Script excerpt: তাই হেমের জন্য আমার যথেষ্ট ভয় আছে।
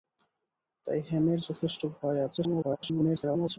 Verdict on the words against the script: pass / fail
fail